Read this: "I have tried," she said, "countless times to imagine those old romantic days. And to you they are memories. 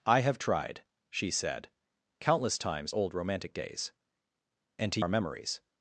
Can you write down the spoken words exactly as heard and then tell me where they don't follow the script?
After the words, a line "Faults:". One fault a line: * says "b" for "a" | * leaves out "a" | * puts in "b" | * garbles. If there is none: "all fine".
"I have tried," she said, "countless times old romantic days. And to are memories.
Faults:
* leaves out "to imagine those"
* leaves out "you they"